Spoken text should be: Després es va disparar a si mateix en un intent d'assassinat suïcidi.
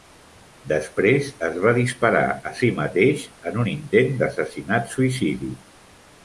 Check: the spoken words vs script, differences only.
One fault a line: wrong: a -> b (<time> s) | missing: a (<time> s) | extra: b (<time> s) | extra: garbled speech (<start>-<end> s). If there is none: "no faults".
no faults